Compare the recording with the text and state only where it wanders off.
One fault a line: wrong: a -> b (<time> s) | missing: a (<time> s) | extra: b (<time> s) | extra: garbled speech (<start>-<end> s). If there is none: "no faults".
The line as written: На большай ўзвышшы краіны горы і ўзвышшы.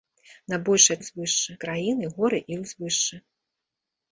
no faults